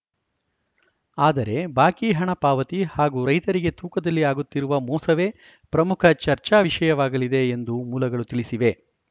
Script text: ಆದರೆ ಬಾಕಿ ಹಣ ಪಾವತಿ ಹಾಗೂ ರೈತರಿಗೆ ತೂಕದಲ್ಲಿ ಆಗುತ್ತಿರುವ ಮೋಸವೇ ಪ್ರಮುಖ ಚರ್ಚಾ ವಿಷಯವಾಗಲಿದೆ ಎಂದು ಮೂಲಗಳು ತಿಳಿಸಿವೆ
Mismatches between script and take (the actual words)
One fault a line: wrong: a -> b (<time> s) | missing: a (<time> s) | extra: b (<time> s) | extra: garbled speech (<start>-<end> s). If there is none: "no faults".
no faults